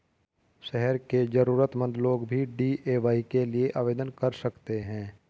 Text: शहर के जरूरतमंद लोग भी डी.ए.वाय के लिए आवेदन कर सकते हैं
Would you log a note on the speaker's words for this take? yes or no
no